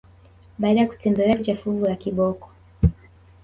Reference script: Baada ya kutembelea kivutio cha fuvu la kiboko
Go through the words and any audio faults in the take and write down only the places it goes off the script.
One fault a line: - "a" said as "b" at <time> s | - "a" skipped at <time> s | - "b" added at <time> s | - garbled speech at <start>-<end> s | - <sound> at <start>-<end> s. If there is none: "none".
- "kivutio" skipped at 1.4 s